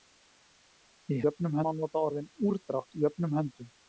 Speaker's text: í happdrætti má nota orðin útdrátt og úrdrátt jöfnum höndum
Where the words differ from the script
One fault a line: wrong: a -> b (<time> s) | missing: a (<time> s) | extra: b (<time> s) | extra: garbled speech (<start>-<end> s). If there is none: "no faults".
wrong: happdrætti -> jöfnum (1.3 s)
missing: útdrátt og (2.3 s)